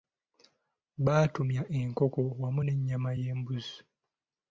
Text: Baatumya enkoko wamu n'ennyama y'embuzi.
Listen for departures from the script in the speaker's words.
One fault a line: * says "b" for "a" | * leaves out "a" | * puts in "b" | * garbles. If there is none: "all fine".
all fine